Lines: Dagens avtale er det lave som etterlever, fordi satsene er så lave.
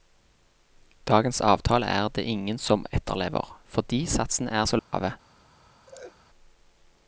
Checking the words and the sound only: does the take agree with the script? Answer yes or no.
no